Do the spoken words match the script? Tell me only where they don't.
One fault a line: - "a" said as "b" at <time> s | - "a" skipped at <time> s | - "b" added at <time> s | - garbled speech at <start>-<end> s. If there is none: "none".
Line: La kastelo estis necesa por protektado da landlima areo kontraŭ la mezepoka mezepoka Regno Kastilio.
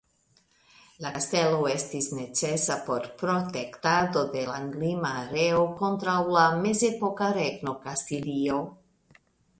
- "da" said as "de" at 4.3 s
- "mezepoka" skipped at 7.3 s